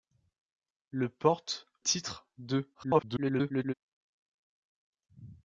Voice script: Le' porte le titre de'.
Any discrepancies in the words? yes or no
yes